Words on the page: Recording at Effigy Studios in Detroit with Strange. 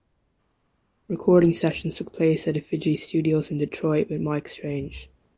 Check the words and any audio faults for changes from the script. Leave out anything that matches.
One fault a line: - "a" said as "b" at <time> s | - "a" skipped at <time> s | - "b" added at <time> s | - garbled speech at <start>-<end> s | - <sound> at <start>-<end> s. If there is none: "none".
- "sessions took place" added at 1.5 s
- "Mike" added at 4.2 s